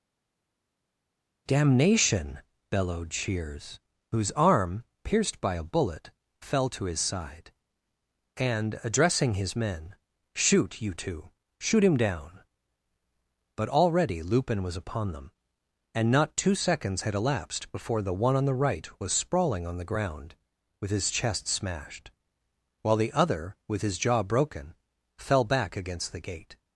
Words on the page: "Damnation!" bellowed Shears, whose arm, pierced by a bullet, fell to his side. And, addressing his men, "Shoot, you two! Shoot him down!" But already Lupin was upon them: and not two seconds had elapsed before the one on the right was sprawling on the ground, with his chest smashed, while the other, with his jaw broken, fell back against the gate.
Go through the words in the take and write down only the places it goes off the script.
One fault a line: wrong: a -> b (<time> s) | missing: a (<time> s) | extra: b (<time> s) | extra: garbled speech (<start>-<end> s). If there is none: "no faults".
no faults